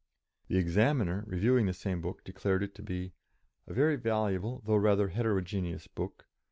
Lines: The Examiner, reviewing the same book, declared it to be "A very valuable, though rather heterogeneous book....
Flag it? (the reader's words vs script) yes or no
no